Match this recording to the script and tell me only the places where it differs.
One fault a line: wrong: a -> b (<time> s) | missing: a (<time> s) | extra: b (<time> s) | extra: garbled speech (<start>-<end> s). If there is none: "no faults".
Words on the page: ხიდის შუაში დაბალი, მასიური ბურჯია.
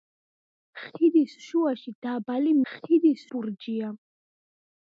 wrong: მასიური -> ხიდის (2.7 s)